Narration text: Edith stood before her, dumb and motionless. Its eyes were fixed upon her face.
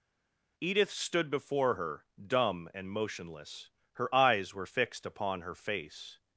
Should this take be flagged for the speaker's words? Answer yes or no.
yes